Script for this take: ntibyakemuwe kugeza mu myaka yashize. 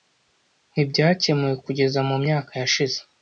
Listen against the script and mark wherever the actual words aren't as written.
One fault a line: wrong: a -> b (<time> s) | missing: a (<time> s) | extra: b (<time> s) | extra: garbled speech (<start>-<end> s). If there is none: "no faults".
no faults